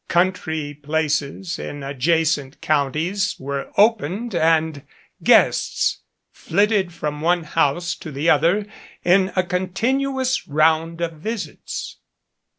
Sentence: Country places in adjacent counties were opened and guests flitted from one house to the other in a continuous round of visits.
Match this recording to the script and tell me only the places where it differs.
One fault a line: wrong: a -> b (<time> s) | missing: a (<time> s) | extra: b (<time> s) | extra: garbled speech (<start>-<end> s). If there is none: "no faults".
no faults